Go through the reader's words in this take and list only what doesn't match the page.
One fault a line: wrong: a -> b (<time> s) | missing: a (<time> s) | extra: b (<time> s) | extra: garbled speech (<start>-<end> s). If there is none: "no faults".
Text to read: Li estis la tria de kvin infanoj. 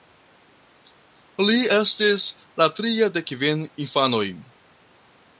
no faults